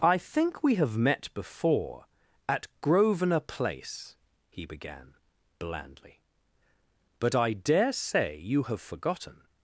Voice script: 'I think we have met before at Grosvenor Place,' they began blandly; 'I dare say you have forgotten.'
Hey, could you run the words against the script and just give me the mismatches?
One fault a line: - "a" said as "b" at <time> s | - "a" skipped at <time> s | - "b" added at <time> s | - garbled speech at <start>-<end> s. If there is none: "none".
- "they" said as "he" at 4.5 s
- "but" added at 7.2 s